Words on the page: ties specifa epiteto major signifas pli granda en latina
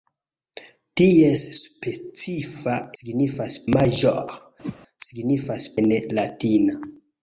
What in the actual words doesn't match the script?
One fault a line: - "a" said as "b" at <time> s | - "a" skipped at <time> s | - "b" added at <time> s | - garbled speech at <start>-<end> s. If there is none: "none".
- "epiteto" said as "signifas" at 3.0 s
- "pli granda" skipped at 5.7 s